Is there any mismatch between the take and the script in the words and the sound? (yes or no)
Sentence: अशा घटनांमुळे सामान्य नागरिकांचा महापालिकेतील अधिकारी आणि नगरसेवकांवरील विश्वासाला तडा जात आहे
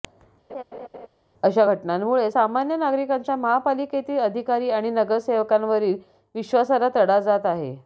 yes